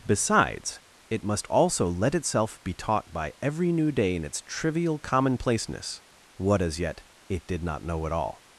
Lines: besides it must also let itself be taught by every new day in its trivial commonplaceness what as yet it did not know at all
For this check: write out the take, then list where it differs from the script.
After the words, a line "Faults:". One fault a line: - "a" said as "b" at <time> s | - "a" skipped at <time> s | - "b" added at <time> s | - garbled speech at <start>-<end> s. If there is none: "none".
besides it must also let itself be taught by every new day in its trivial commonplaceness what as yet it did not know at all
Faults:
none